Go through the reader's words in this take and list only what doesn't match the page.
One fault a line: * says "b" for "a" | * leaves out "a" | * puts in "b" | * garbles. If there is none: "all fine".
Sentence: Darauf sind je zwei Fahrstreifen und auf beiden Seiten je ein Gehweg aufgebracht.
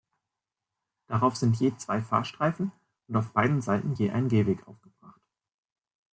all fine